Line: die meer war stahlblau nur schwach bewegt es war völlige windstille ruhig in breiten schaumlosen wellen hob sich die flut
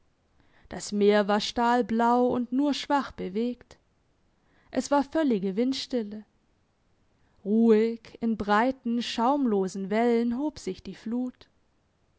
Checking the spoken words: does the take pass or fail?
fail